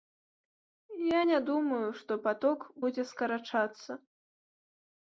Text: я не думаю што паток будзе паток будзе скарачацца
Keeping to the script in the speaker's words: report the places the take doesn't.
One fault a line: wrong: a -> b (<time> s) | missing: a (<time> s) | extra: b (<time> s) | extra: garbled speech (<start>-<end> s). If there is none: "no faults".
missing: паток будзе (3.0 s)